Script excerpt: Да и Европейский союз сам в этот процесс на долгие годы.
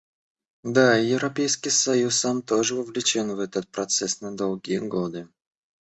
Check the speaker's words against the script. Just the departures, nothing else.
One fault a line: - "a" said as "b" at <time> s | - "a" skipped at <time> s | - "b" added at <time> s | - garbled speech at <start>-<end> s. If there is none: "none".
- "тоже вовлечен" added at 2.4 s